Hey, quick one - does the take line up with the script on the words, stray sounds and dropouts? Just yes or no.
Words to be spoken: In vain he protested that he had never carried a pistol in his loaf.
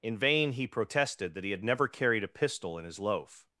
yes